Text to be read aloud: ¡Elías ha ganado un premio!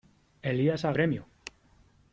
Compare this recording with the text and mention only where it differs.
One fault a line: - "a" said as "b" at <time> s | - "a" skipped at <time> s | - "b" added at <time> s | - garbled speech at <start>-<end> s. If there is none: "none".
- "ganado un" skipped at 0.9 s